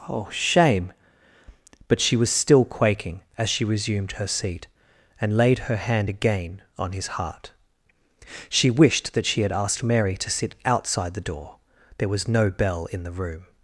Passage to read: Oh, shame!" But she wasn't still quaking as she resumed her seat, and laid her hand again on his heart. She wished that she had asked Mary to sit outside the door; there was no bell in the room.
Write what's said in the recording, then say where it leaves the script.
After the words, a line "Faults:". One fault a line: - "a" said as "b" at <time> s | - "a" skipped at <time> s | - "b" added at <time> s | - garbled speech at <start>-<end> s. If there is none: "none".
Oh, shame!" But she was still quaking as she resumed her seat, and laid her hand again on his heart. She wished that she had asked Mary to sit outside the door; there was no bell in the room.
Faults:
- "wasn't" said as "was" at 2.1 s